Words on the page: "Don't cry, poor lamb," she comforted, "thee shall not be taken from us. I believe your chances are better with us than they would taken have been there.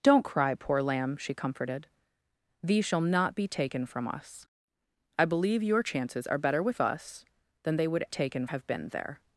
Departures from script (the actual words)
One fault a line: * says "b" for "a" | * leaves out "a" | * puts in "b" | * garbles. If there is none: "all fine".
all fine